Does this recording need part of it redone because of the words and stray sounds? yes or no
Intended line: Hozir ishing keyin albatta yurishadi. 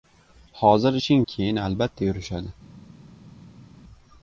no